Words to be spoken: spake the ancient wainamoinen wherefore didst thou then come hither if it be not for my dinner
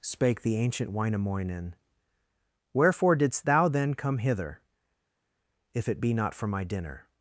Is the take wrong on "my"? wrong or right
right